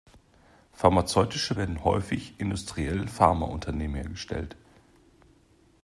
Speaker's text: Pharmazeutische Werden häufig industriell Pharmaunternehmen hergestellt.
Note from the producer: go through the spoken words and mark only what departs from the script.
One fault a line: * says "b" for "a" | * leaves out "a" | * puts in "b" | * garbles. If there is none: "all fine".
all fine